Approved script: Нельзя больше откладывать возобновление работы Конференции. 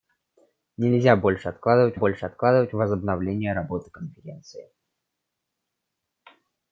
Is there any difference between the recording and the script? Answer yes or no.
yes